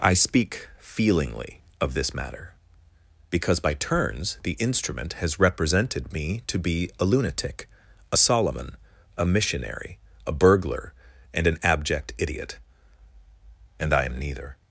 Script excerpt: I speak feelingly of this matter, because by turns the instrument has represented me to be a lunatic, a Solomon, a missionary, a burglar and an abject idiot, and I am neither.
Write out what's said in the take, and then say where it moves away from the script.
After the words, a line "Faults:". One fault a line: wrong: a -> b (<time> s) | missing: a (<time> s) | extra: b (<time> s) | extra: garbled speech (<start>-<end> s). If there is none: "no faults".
I speak feelingly of this matter, because by turns the instrument has represented me to be a lunatic, a Solomon, a missionary, a burglar and an abject idiot, and I am neither.
Faults:
no faults